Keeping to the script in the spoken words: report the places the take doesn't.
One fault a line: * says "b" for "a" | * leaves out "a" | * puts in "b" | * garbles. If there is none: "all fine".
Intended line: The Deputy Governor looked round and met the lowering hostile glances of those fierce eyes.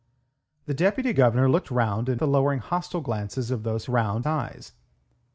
* leaves out "met"
* says "round" for "fierce"